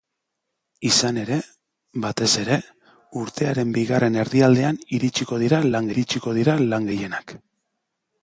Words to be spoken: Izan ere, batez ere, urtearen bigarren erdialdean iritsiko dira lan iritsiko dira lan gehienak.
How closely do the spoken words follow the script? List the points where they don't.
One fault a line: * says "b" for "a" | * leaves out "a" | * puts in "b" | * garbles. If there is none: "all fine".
all fine